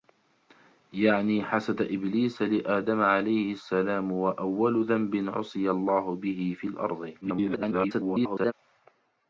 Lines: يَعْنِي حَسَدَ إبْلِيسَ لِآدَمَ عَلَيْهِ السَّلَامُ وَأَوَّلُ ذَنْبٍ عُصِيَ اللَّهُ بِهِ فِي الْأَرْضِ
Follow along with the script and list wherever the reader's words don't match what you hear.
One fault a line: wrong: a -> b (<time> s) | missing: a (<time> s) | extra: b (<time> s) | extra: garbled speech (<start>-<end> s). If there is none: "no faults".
extra: garbled speech (7.2-8.5 s)